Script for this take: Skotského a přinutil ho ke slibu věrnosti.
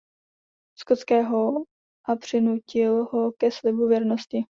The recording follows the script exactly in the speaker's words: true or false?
true